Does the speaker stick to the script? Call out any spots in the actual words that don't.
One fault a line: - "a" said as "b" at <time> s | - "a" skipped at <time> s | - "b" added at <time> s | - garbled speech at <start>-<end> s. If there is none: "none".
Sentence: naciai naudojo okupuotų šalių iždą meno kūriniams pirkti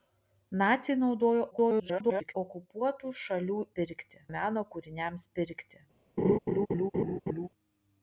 - garbled speech at 1.5-2.4 s
- "iždą" said as "pirkti" at 3.8 s